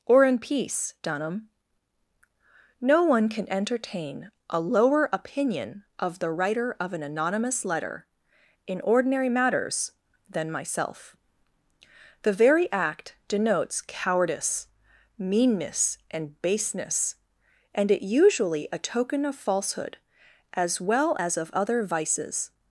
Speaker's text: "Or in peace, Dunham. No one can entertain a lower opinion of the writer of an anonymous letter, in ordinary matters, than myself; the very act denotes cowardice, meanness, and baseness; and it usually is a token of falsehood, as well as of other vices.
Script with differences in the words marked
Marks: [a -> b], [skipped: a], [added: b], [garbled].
"Or in peace, Dunham. No one can entertain a lower opinion of the writer of an anonymous letter, in ordinary matters, than myself; the very act denotes cowardice, meanness, and baseness; and it usually [skipped: is] a token of falsehood, as well as of other vices.